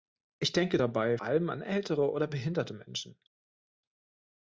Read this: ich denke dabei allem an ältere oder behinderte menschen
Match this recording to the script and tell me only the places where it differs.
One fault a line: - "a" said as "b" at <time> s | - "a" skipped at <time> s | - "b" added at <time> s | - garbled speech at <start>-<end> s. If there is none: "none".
none